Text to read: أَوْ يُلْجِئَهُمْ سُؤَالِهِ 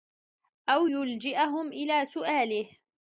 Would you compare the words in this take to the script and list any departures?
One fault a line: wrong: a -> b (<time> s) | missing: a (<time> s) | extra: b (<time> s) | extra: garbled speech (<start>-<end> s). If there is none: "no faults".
extra: إلَى (1.7 s)